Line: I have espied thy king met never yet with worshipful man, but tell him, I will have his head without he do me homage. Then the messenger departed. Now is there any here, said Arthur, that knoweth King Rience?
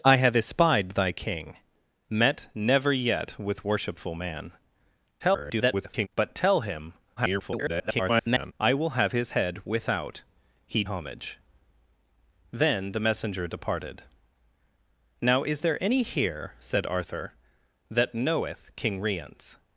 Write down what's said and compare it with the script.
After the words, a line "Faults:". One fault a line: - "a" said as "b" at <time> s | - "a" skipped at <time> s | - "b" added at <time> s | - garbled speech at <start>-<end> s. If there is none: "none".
I have espied thy king met never yet with worshipful man, [garbled] but tell him, [garbled] I will have his head without he homage. Then the messenger departed. Now is there any here, said Arthur, that knoweth King Rience?
Faults:
- garbled speech at 5.2-6.1 s
- garbled speech at 7.2-8.5 s
- "do me" skipped at 10.8 s